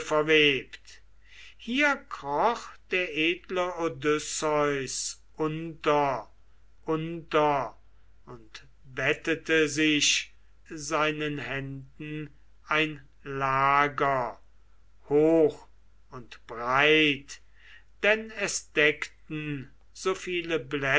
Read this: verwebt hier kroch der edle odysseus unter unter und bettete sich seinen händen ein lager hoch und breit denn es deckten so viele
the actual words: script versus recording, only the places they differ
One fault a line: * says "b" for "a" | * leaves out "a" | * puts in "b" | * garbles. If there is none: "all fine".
all fine